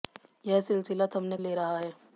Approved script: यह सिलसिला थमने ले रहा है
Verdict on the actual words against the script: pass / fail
pass